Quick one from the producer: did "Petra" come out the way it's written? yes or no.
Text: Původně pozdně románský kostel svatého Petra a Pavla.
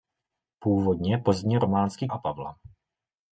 no